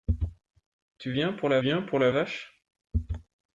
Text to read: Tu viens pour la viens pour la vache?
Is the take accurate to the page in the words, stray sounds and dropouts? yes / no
yes